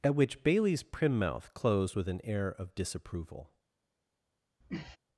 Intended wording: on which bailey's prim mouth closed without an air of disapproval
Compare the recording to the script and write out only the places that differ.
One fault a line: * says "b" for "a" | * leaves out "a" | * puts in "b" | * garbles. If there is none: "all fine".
* says "at" for "on"
* says "with" for "without"